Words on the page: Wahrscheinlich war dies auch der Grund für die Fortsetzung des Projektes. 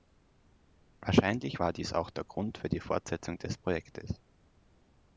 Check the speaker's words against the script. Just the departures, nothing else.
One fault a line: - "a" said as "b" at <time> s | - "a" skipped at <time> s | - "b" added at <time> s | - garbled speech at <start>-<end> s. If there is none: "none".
none